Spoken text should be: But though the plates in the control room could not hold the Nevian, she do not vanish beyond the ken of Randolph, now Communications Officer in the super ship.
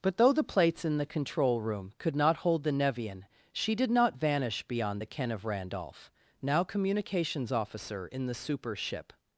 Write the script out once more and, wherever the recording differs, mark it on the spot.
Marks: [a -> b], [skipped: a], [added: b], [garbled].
But though the plates in the control room could not hold the Nevian, she [do -> did] not vanish beyond the ken of Randolph, now Communications Officer in the super ship.